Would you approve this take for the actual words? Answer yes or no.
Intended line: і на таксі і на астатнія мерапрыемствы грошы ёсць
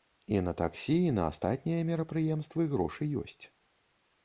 yes